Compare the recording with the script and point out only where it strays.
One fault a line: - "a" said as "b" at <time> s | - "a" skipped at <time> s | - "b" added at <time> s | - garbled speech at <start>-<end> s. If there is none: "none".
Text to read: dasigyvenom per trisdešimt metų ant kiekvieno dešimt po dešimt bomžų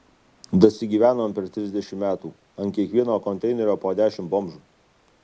- "dešimt" said as "konteinerio" at 3.3 s